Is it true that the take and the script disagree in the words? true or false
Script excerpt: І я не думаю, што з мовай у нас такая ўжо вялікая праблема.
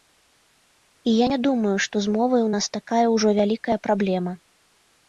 false